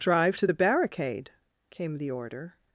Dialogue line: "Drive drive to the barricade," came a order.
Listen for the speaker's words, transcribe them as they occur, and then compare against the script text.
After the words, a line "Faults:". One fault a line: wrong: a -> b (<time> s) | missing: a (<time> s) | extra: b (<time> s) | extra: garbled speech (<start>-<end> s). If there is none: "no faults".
"Drive to the barricade," came the order.
Faults:
missing: drive (0.4 s)
wrong: a -> the (2.0 s)